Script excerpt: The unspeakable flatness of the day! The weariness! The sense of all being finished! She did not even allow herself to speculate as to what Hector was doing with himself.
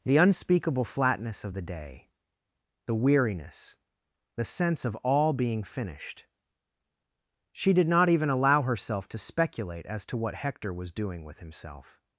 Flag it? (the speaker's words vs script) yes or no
no